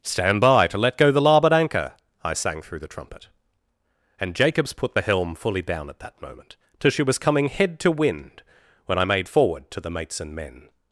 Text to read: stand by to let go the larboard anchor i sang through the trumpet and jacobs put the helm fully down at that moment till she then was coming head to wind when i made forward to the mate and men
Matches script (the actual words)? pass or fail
fail